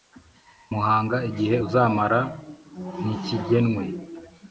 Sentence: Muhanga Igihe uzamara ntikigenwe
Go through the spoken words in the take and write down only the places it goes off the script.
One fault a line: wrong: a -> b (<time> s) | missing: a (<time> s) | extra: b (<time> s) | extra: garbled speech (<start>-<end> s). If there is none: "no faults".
no faults